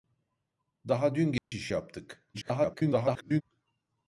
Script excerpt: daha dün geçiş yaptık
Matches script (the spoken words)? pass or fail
fail